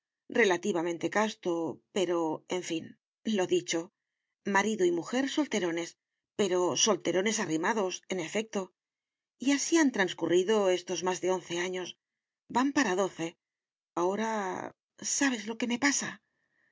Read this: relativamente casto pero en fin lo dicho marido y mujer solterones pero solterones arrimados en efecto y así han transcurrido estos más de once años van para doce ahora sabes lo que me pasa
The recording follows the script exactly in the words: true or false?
true